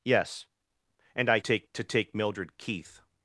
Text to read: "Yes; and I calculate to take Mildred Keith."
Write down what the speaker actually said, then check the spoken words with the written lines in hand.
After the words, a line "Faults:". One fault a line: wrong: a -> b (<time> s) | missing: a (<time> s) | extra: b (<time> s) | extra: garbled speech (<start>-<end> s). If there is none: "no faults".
"Yes; and I take to take Mildred Keith."
Faults:
wrong: calculate -> take (1.4 s)